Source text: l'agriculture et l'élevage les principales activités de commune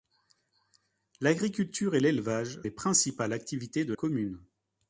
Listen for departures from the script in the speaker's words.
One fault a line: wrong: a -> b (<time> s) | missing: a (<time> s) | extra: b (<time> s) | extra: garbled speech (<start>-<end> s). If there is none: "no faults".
no faults